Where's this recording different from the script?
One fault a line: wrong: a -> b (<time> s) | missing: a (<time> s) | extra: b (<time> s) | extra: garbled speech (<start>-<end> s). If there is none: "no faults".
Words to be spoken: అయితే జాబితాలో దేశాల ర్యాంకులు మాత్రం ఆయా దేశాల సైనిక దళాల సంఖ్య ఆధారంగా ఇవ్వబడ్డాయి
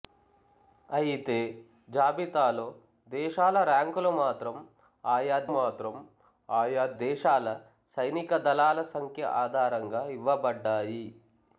extra: మాత్రం ఆయా (5.5 s)